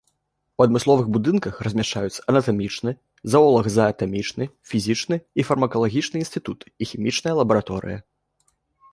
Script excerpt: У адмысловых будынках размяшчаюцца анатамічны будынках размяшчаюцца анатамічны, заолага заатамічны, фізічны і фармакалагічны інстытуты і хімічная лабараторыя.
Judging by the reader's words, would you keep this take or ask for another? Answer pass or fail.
fail